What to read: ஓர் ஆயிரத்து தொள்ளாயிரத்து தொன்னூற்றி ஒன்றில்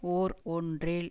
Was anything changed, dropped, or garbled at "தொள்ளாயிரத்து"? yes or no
yes